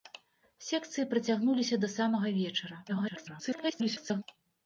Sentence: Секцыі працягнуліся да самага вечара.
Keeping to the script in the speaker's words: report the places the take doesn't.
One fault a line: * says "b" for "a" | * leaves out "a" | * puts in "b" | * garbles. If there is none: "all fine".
* garbles